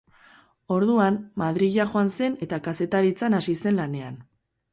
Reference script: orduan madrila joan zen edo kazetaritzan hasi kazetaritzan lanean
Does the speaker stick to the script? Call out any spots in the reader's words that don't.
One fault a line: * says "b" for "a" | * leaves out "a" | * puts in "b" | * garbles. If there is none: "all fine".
* says "eta" for "edo"
* says "zen" for "kazetaritzan"